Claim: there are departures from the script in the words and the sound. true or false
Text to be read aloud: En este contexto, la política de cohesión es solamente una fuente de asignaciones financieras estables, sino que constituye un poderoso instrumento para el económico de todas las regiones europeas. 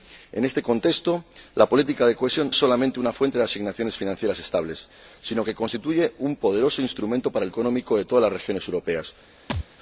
true